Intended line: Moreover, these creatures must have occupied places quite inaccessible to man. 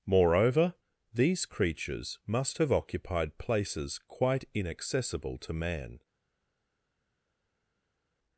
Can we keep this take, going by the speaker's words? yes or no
yes